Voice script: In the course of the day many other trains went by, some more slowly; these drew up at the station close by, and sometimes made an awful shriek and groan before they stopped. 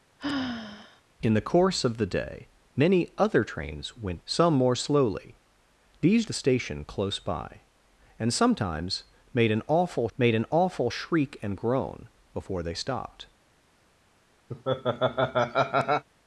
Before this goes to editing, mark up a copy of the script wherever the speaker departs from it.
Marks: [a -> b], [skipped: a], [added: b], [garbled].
In the course of the day many other trains went [skipped: by,] some more slowly; these [skipped: drew up at] the station close by, and sometimes made an awful [added: made an awful] shriek and groan before they stopped.